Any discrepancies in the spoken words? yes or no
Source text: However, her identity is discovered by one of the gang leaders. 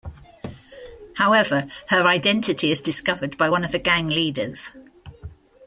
no